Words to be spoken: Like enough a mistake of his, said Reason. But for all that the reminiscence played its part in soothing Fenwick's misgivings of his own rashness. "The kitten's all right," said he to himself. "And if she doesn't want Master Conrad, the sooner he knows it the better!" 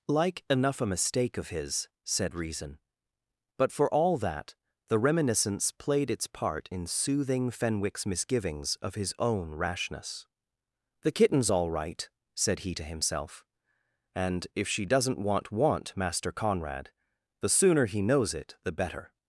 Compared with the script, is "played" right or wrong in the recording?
right